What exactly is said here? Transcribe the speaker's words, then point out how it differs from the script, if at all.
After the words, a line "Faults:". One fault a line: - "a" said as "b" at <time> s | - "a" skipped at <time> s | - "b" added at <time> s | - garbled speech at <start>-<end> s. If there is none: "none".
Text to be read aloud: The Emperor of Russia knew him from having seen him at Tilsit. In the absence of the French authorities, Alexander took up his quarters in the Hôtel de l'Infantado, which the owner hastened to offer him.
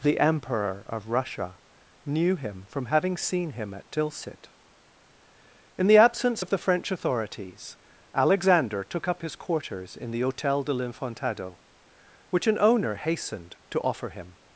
The Emperor of Russia knew him from having seen him at Tilsit. In the absence of the French authorities, Alexander took up his quarters in the Hôtel de l'Infantado, which an owner hastened to offer him.
Faults:
- "the" said as "an" at 12.5 s